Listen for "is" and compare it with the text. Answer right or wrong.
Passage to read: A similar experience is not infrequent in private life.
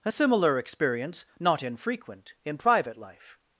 wrong